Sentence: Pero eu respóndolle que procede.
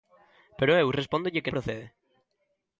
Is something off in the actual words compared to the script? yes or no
no